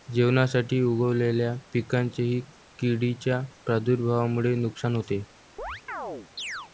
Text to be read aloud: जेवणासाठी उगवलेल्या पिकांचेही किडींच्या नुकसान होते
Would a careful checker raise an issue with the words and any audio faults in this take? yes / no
yes